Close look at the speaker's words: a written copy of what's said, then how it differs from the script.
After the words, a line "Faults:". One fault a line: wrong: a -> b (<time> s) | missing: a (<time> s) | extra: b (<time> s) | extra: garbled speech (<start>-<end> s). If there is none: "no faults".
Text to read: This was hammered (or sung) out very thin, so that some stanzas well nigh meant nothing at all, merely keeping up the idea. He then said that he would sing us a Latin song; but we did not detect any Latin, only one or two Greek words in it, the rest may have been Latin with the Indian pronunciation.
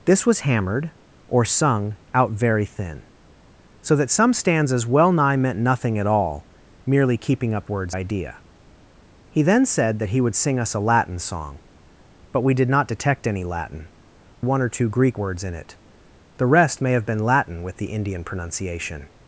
This was hammered (or sung) out very thin, so that some stanzas well nigh meant nothing at all, merely keeping up words idea. He then said that he would sing us a Latin song; but we did not detect any Latin, one or two Greek words in it, the rest may have been Latin with the Indian pronunciation.
Faults:
wrong: the -> words (7.7 s)
missing: only (13.9 s)